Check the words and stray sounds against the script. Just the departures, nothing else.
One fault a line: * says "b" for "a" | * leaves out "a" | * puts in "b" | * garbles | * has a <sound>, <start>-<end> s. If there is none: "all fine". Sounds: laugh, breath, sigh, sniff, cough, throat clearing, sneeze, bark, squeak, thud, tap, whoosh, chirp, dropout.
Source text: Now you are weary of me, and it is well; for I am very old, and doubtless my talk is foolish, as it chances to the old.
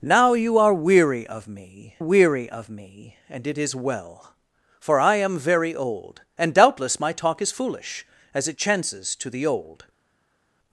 * puts in "weary of me"